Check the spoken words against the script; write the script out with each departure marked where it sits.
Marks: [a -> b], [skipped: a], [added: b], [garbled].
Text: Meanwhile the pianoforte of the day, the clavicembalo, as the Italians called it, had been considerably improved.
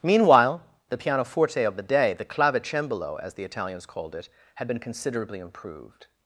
Meanwhile the pianoforte of the day, the clavicembalo, as the Italians called it, had been considerably improved.